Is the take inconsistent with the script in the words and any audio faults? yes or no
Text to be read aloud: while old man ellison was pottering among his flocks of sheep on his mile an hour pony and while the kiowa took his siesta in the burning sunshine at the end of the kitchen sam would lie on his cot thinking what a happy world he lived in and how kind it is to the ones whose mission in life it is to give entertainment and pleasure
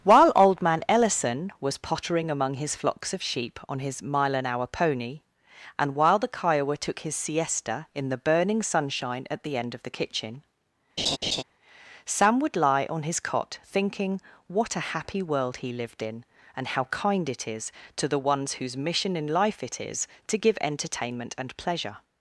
yes